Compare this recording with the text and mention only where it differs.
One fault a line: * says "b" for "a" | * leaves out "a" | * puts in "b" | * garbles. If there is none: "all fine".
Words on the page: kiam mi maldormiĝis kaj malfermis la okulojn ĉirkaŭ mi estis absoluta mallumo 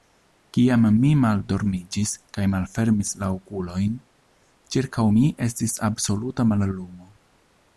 all fine